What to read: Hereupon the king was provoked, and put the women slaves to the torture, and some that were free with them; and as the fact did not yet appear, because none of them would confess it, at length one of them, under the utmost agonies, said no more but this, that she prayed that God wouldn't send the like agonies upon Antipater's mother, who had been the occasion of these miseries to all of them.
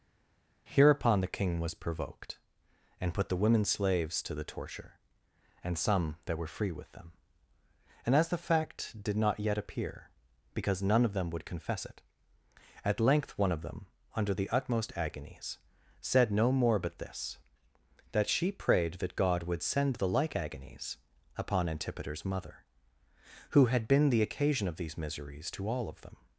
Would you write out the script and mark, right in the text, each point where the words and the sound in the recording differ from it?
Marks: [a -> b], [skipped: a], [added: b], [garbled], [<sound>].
Hereupon the king was provoked, and put the women slaves to the torture, and some that were free with them; and as the fact did not yet appear, because none of them would confess it, at length one of them, under the utmost agonies, said no more but this, that she prayed that God [wouldn't -> would] send the like agonies upon Antipater's mother, who had been the occasion of these miseries to all of them.